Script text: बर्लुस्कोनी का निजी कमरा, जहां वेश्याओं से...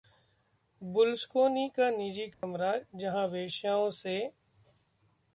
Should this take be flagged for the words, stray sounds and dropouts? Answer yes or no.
yes